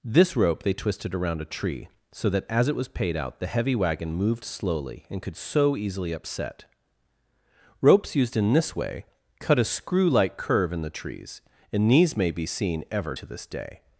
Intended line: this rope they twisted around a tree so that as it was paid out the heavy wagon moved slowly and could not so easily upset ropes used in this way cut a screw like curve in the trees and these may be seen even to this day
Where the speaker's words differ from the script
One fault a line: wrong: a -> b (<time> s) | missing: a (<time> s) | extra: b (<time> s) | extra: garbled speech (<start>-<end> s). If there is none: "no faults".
missing: not (5.4 s)
wrong: even -> ever (12.9 s)